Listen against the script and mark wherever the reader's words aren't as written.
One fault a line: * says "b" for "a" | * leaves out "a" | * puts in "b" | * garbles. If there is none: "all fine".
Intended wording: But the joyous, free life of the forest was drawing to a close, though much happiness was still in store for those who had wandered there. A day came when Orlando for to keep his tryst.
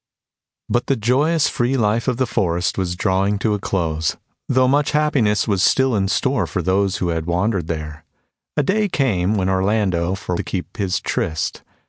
all fine